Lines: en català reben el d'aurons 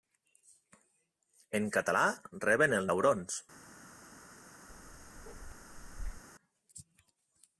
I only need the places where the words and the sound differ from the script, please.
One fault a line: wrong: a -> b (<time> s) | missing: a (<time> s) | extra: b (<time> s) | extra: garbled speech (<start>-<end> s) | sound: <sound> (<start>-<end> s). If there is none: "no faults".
sound: bark (4.7-6.2 s)